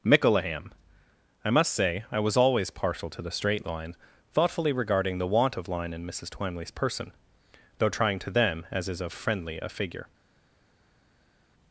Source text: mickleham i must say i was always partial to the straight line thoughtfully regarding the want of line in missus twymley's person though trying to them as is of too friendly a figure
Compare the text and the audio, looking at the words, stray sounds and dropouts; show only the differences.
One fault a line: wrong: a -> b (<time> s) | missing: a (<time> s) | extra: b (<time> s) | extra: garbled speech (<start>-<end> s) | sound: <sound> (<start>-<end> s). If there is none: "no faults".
missing: too (9.1 s)